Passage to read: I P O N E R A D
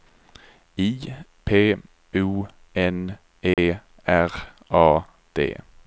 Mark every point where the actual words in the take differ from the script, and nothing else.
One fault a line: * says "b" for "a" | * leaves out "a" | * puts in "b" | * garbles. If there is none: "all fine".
all fine